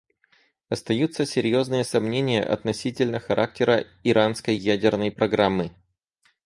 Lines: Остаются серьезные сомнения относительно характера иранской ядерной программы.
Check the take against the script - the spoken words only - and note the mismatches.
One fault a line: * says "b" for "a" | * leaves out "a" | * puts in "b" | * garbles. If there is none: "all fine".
all fine